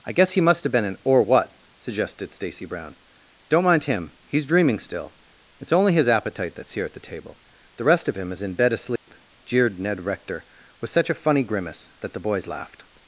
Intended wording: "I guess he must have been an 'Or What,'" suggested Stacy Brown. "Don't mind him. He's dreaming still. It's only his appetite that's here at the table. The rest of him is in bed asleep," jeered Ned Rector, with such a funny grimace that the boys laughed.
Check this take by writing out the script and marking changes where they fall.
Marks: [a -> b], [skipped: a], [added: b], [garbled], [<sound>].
"I guess he must have been an 'Or What,'" suggested Stacy Brown. "Don't mind him. He's dreaming still. It's only his appetite that's here at the table. The rest of him is in bed asleep," [dropout] jeered Ned Rector, with such a funny grimace that the boys laughed.